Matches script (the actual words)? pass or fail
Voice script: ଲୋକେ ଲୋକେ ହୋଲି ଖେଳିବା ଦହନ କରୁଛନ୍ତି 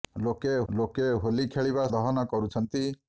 pass